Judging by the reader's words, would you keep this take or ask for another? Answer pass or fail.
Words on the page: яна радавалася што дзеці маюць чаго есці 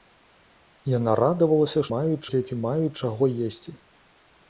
fail